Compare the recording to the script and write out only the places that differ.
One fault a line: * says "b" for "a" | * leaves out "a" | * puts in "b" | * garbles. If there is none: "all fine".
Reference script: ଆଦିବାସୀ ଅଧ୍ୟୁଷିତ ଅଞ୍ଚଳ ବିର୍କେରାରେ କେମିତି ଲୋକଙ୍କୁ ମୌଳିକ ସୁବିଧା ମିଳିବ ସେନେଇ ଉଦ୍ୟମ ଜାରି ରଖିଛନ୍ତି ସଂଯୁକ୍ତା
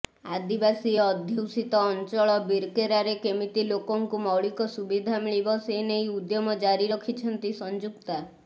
all fine